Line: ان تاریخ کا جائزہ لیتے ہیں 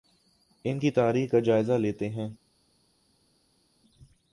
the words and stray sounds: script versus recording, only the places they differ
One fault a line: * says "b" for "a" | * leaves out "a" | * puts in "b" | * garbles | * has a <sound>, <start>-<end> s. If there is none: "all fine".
* puts in "کی"